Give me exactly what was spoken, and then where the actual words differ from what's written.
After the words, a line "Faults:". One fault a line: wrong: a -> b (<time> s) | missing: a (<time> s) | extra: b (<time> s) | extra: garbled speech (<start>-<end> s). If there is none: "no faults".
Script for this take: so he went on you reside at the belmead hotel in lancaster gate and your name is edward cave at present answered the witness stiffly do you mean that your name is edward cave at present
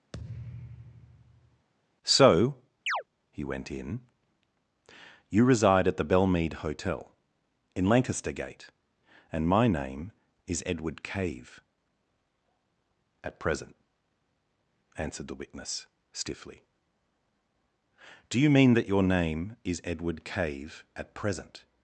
so he went in you reside at the belmead hotel in lancaster gate and my name is edward cave at present answered the witness stiffly do you mean that your name is edward cave at present
Faults:
wrong: on -> in (3.7 s)
wrong: your -> my (9.5 s)